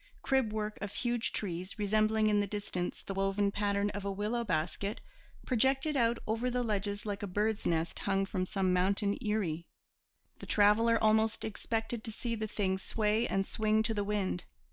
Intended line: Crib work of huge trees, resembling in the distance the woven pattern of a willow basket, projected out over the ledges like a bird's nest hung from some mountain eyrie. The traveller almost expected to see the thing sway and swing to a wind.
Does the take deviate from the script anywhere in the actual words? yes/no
yes